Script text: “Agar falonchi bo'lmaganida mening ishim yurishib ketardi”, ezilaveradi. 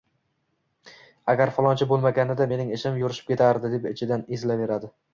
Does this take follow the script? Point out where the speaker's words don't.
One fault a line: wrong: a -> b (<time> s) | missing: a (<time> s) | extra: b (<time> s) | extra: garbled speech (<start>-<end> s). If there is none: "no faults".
extra: deb ichidan (3.8 s)